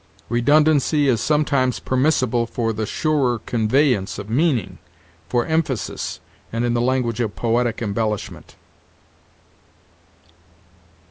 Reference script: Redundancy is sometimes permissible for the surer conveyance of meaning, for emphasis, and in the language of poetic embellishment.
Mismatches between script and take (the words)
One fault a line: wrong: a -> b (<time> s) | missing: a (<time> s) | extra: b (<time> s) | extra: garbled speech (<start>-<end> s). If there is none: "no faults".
no faults